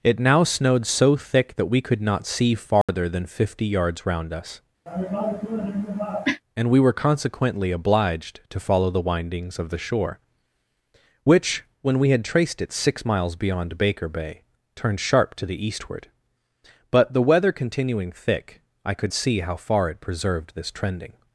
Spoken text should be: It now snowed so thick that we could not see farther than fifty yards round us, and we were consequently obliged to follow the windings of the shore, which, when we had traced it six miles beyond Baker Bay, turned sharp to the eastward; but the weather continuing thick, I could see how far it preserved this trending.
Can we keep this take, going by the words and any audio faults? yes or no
no